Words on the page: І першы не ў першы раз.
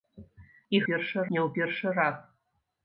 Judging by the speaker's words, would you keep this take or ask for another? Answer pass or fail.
pass